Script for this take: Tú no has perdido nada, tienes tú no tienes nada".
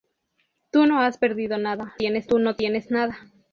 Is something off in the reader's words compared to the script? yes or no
no